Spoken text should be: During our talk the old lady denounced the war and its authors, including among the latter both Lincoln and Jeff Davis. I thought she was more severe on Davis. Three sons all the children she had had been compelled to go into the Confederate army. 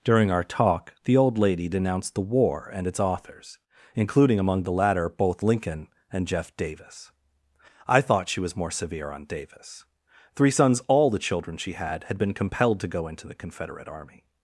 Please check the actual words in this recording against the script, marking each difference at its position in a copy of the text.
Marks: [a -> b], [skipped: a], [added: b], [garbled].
During our talk the old lady denounced the war and its authors, including among the latter both Lincoln and Jeff Davis. I thought she was more severe on Davis. Three sons all the children she had had been compelled to go into the Confederate army.